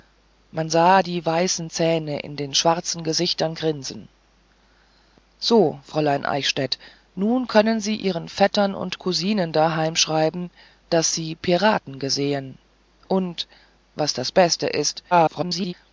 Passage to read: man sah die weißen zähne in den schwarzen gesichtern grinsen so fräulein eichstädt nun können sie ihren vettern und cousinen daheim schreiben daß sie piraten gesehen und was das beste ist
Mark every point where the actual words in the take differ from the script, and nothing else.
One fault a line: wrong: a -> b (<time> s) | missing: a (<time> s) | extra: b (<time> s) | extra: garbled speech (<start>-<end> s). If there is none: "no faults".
extra: garbled speech (15.1-15.7 s)